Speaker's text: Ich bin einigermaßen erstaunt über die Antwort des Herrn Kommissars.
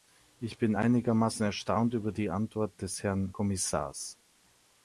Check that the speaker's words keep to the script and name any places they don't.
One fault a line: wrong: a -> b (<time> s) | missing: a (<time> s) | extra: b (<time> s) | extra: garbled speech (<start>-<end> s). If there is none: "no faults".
no faults